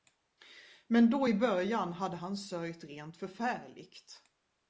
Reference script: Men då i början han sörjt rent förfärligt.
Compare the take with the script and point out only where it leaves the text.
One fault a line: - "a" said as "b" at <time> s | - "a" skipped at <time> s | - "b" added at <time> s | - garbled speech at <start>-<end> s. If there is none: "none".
- "hade" added at 1.9 s